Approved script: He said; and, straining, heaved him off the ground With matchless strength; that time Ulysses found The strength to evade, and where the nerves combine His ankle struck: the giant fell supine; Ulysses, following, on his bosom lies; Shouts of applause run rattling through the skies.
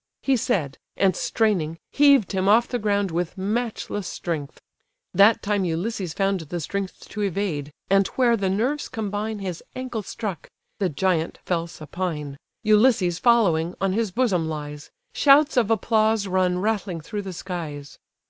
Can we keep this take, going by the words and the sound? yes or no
yes